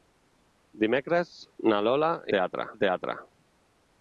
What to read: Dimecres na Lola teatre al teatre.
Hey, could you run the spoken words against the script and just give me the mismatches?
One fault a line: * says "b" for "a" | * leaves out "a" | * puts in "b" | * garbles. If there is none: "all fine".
all fine